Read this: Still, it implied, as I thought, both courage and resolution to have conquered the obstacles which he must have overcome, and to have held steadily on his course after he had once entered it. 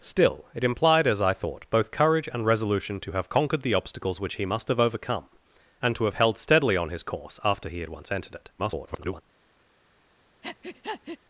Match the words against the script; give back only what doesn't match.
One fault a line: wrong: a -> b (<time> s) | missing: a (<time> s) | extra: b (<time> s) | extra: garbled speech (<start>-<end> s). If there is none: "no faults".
extra: garbled speech (8.6-9.2 s)